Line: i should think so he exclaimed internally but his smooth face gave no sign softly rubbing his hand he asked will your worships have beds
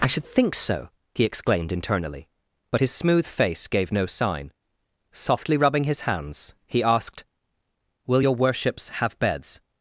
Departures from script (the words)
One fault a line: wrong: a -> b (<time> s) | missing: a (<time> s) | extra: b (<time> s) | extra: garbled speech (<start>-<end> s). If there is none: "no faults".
wrong: hand -> hands (6.0 s)